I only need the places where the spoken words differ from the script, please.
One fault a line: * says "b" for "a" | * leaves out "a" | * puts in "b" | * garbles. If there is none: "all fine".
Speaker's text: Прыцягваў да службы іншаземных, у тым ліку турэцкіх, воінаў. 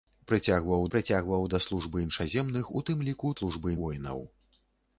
* puts in "прыцягваў"
* says "службы" for "турэцкіх"